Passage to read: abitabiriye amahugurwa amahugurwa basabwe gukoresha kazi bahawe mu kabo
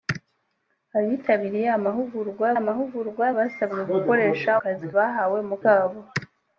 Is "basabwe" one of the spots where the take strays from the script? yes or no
no